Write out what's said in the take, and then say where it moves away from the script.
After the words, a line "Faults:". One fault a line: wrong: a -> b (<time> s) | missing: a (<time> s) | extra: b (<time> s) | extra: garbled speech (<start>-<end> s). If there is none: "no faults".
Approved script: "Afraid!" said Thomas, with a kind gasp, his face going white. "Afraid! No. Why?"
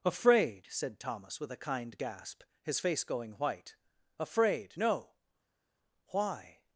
"Afraid!" said Thomas, with a kind gasp, his face going white. "Afraid! No. Why?"
Faults:
no faults